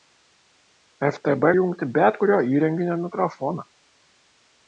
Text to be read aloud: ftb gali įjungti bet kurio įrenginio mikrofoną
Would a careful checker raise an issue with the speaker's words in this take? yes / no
yes